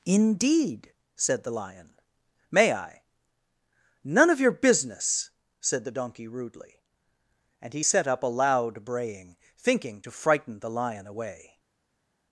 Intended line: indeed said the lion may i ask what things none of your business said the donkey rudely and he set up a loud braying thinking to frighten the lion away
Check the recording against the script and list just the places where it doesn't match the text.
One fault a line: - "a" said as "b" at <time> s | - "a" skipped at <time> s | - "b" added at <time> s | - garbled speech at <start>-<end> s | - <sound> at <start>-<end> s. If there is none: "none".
- "ask what things" skipped at 3.0 s